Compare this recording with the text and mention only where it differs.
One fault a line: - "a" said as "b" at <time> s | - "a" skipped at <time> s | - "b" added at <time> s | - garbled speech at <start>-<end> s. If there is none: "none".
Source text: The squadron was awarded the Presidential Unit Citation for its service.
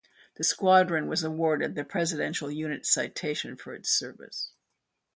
none